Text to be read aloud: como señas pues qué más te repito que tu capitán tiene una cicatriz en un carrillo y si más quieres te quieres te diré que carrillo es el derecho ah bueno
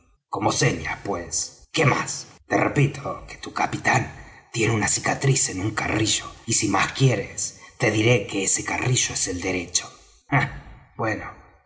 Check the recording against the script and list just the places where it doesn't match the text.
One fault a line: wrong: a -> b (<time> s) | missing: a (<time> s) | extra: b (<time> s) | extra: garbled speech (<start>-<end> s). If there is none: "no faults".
missing: quieres te (7.9 s)
extra: ese (8.4 s)